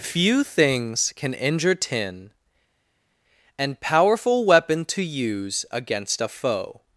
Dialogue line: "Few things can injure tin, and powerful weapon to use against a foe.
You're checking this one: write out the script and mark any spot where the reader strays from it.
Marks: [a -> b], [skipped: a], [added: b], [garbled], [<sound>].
"Few things can injure tin, and powerful weapon to use against a foe.